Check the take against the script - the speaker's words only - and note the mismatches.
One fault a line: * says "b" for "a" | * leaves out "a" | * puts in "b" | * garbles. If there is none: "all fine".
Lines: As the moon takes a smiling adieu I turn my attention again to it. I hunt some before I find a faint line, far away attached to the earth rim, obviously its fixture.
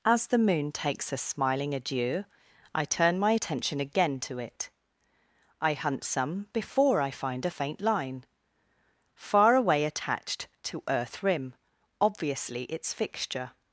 * leaves out "the"